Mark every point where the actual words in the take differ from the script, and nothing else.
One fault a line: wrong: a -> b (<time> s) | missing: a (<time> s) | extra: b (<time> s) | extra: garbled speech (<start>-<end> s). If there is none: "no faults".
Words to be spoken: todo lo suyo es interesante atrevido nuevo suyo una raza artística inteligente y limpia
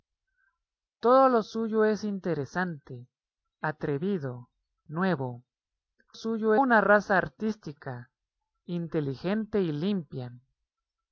no faults